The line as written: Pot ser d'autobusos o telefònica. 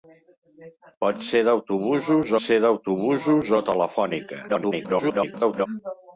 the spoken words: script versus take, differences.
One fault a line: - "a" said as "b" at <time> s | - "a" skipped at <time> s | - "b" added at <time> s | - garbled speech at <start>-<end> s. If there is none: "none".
- "ser d'autobusos" added at 2.4 s
- garbled speech at 4.5-5.7 s